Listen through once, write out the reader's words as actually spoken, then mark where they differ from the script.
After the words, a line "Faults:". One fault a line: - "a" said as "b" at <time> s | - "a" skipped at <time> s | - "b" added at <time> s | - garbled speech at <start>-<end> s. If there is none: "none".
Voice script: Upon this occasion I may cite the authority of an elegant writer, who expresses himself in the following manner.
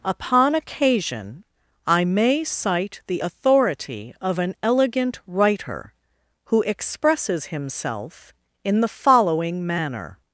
Upon occasion I may cite the authority of an elegant writer, who expresses himself in the following manner.
Faults:
- "this" skipped at 0.6 s